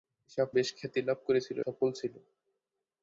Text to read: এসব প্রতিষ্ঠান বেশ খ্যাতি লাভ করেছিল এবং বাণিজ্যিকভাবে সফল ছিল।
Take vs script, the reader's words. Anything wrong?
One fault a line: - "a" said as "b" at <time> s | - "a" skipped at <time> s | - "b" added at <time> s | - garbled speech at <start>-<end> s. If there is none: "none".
- "প্রতিষ্ঠান" skipped at 0.5 s
- "এবং বাণিজ্যিকভাবে" skipped at 1.6 s